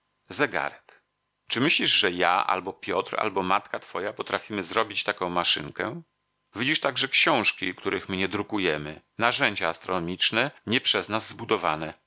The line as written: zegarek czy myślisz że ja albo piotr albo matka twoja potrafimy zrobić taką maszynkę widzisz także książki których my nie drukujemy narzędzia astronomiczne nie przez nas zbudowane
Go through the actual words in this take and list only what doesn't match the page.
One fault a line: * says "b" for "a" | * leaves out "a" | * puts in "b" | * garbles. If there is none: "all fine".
all fine